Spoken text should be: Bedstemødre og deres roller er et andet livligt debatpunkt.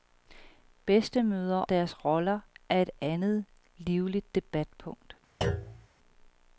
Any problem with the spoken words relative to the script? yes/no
yes